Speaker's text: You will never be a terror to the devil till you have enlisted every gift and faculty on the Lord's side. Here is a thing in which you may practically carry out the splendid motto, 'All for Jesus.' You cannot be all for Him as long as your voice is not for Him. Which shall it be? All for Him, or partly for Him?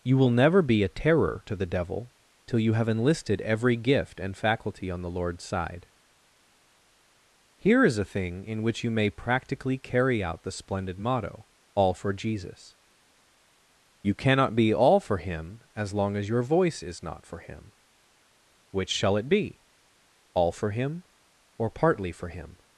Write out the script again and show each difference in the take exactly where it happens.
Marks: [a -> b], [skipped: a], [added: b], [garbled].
You will never be a terror to the devil till you have enlisted every gift and faculty on the Lord's side. Here is a thing in which you may practically carry out the splendid motto, 'All for Jesus.' You cannot be all for Him as long as your voice is not for Him. Which shall it be? All for Him, or partly for Him?